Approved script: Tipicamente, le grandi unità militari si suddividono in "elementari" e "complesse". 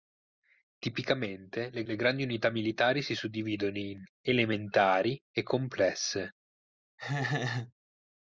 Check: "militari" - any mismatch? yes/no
no